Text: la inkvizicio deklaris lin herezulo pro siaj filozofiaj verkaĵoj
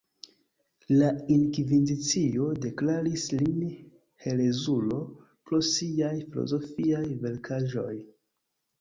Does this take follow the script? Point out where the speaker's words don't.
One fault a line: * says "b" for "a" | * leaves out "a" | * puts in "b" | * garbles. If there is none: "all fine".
all fine